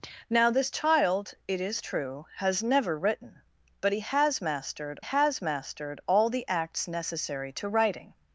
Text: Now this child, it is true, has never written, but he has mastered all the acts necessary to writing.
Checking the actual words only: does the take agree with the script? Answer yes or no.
no